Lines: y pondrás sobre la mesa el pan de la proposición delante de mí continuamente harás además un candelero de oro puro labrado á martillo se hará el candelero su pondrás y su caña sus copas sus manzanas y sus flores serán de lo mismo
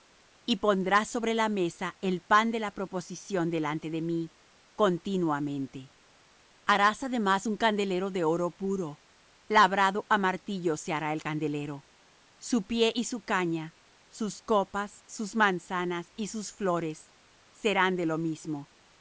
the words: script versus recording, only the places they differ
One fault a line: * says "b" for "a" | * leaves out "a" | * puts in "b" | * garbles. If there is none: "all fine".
* says "pie" for "pondrás"